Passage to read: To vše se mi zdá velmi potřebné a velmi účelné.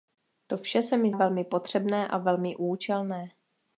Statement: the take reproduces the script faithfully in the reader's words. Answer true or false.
false